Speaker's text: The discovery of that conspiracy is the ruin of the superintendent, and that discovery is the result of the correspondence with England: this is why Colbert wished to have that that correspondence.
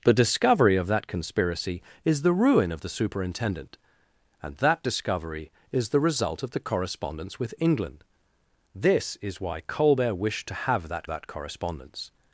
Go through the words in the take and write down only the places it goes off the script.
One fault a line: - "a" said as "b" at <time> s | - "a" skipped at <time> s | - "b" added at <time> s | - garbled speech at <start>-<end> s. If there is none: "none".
none